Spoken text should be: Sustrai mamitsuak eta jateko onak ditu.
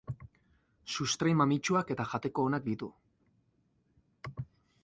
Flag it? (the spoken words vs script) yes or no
no